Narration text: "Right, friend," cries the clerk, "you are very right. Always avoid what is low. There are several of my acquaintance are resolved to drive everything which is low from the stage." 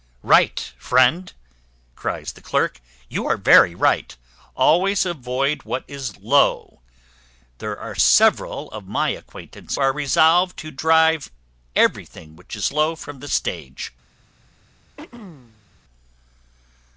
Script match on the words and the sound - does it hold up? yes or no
no